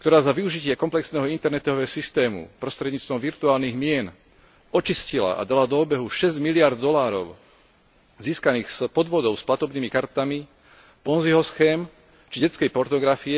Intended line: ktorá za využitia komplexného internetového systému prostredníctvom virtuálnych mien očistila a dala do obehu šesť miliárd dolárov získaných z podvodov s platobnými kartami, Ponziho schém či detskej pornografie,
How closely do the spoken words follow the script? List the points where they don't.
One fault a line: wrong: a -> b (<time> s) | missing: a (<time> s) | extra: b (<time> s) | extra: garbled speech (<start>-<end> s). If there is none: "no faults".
no faults